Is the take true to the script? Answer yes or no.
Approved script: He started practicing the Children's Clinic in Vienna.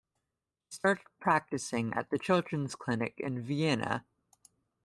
no